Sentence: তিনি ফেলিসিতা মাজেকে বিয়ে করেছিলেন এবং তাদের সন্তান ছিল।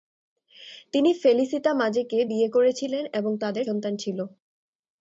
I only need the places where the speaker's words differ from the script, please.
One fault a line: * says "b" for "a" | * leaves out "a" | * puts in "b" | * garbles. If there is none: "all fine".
all fine